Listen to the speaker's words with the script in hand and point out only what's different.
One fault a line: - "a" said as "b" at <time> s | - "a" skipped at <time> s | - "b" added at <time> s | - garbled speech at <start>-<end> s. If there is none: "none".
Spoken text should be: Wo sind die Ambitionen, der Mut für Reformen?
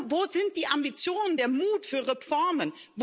none